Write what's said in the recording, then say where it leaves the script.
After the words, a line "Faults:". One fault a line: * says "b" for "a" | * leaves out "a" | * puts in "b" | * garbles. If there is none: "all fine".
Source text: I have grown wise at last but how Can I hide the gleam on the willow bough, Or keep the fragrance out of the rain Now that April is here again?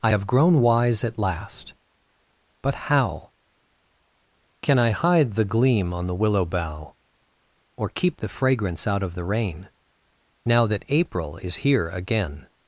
I have grown wise at last but how Can I hide the gleam on the willow bough, Or keep the fragrance out of the rain Now that April is here again?
Faults:
all fine